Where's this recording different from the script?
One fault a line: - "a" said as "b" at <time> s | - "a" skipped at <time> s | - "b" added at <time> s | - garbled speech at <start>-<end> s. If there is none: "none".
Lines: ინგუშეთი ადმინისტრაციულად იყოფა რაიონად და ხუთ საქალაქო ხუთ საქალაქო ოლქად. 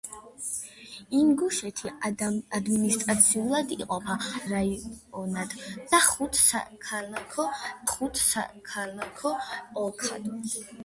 none